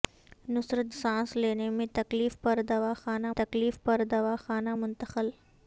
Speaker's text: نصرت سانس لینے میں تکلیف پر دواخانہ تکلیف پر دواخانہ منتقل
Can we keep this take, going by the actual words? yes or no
yes